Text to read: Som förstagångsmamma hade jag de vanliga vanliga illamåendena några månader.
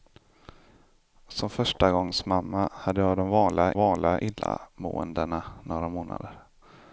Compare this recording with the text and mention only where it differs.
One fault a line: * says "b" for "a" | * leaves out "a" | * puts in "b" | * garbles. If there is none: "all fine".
all fine